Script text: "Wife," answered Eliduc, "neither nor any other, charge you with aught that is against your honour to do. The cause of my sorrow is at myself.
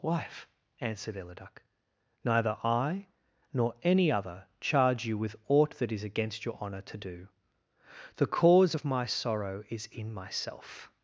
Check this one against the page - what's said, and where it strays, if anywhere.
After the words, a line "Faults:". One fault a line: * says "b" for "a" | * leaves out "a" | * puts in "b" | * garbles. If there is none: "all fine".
"Wife," answered Eliduc, "neither I, nor any other, charge you with aught that is against your honour to do. The cause of my sorrow is in myself.
Faults:
* puts in "I"
* says "in" for "at"